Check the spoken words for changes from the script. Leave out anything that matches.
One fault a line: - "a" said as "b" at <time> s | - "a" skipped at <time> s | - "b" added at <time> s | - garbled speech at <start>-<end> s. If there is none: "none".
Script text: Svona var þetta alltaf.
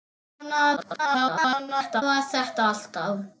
- garbled speech at 0.8-2.0 s